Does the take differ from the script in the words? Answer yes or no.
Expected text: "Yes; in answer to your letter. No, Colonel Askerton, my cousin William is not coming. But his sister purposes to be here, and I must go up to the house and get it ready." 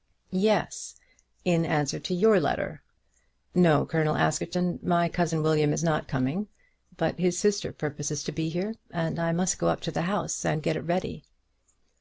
no